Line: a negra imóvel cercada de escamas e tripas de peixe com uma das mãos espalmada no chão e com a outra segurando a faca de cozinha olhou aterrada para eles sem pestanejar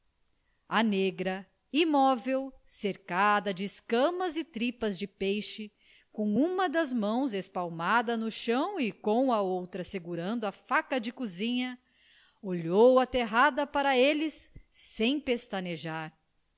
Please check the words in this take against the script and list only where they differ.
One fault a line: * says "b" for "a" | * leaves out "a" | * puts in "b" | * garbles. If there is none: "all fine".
all fine